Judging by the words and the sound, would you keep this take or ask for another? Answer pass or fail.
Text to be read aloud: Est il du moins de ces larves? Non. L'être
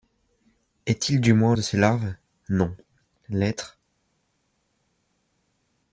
pass